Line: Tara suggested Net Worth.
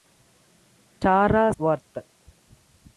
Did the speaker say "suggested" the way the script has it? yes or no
no